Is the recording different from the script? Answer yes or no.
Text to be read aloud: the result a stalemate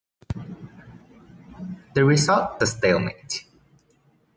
no